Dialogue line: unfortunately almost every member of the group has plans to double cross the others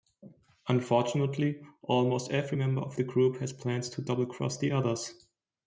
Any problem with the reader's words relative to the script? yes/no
no